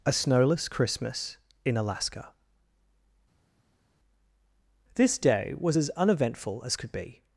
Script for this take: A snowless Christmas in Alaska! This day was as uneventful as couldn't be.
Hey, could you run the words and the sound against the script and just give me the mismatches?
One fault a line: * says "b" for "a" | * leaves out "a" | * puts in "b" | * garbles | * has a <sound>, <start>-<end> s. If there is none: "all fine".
* says "could" for "couldn't"